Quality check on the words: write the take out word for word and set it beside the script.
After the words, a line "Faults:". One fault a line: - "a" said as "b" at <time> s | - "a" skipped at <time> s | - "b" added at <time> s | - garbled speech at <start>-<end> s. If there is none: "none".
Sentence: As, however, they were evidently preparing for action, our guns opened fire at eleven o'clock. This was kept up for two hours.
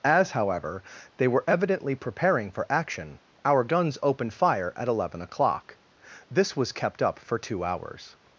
As, however, they were evidently preparing for action, our guns opened fire at eleven o'clock. This was kept up for two hours.
Faults:
none